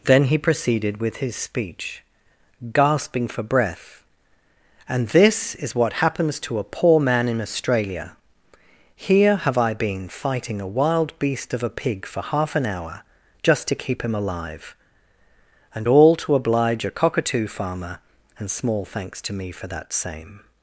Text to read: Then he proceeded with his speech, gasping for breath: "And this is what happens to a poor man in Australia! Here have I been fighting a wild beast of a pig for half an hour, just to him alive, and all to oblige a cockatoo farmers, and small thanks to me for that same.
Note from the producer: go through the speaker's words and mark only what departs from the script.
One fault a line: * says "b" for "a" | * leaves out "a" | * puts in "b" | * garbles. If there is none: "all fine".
* puts in "keep"
* says "farmer" for "farmers"